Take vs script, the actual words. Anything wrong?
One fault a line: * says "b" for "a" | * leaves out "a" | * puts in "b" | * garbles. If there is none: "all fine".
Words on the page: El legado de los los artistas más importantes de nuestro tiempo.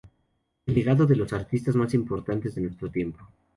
* leaves out "los"